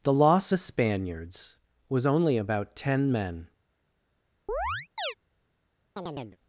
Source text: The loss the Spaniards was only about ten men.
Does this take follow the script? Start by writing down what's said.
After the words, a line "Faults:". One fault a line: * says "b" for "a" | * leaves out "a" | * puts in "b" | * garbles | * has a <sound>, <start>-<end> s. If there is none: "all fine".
The loss the Spaniards was only about ten men.
Faults:
* has a chirp, 4.5-5.1 s
* has a chirp, 6.0-6.4 s